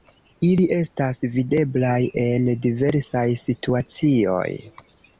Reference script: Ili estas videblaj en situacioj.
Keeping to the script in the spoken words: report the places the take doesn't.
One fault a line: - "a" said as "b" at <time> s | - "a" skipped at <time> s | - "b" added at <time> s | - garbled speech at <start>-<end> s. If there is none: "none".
- "diversaj" added at 2.7 s